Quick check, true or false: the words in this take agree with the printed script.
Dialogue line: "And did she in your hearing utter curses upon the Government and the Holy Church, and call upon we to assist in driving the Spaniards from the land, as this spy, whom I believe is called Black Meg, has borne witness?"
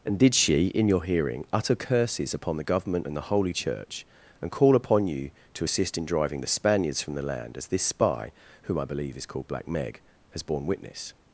false